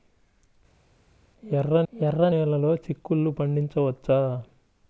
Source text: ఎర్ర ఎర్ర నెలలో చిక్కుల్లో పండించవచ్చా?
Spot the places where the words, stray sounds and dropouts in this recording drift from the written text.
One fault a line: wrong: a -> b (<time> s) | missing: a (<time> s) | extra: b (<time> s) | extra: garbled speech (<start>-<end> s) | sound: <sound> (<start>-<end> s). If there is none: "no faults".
no faults